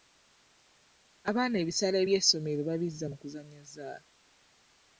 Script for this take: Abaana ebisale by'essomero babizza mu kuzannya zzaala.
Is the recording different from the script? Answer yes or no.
no